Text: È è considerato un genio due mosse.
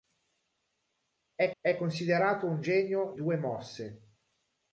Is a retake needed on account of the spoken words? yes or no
no